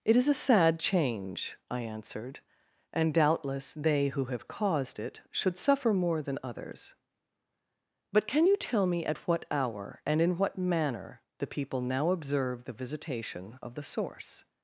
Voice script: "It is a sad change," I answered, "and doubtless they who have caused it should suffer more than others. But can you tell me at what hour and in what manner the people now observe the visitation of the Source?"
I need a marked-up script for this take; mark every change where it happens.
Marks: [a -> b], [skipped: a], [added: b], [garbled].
"It is a sad change," I answered, "and doubtless they who have caused it should suffer more than others. But can you tell me at what hour and in what manner the people now observe the visitation of the Source?"